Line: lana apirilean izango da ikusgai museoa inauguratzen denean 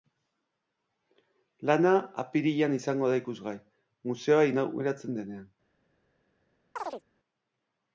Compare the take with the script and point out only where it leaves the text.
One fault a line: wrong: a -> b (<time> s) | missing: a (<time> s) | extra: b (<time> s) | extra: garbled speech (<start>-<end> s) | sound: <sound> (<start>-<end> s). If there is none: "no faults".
sound: chirp (6.8-7.0 s)